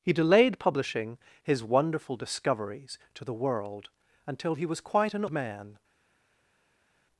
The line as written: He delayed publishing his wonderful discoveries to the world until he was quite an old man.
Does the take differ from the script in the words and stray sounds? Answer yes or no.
yes